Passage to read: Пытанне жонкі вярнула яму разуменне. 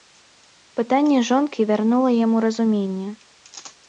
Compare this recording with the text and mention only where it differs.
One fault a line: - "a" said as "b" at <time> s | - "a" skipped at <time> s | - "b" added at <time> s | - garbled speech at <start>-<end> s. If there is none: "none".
none